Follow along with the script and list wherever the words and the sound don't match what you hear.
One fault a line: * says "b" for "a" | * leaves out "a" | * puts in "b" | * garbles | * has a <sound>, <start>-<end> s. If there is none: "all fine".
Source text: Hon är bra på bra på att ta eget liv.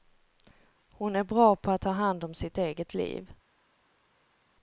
* says "att ta hand om sitt" for "bra på att ta"